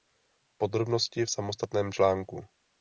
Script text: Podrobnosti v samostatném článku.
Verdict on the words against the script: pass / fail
pass